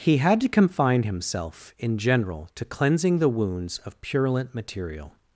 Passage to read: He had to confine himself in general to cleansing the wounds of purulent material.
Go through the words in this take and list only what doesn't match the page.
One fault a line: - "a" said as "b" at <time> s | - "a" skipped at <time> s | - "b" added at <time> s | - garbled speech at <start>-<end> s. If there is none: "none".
none